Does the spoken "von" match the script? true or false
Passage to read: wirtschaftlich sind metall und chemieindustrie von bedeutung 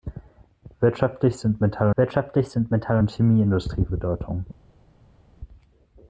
false